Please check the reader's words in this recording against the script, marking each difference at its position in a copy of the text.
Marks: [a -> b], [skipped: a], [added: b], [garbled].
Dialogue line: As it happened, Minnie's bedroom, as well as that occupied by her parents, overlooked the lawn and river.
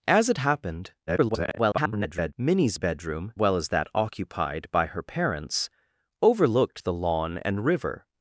As it happened, [garbled] Minnie's bedroom, [skipped: as] well as that occupied by her parents, overlooked the lawn and river.